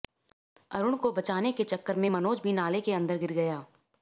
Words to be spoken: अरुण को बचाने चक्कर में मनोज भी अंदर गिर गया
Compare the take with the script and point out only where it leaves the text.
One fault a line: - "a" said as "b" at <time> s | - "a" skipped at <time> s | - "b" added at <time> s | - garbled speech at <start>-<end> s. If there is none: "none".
- "के" added at 1.5 s
- "नाले के" added at 2.5 s